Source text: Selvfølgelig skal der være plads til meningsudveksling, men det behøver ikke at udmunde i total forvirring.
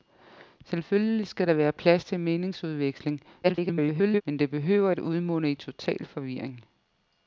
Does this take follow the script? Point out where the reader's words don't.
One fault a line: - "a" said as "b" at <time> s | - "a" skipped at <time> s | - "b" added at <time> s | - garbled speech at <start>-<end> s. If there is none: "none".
- garbled speech at 3.4-4.2 s
- "ikke" skipped at 4.9 s